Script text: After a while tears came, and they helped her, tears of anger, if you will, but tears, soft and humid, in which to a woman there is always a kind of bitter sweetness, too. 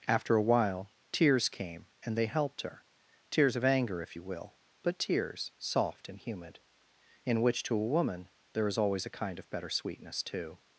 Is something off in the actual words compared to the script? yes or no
yes